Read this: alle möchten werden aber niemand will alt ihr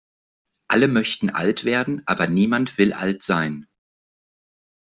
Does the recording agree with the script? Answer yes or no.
no